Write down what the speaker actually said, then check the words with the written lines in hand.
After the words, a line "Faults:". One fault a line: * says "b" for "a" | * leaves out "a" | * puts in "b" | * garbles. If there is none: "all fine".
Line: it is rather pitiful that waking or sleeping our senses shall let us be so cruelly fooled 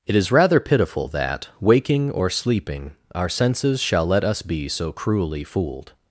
it is rather pitiful that waking or sleeping our senses shall let us be so cruelly fooled
Faults:
all fine